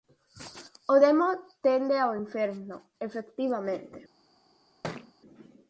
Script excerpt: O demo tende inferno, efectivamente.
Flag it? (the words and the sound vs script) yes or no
yes